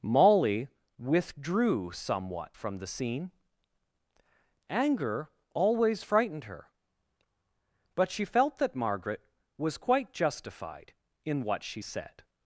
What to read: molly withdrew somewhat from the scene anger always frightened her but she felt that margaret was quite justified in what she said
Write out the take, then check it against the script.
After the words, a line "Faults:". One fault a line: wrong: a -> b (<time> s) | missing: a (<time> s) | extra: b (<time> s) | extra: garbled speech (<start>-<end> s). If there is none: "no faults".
molly withdrew somewhat from the scene anger always frightened her but she felt that margaret was quite justified in what she said
Faults:
no faults